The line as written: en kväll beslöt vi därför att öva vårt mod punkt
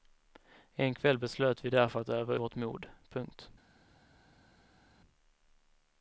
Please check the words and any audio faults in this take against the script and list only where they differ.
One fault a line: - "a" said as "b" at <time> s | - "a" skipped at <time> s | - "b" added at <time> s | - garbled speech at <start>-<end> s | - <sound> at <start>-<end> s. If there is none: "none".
none